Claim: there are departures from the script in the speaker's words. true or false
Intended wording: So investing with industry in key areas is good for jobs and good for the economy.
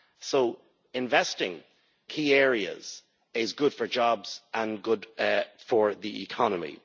true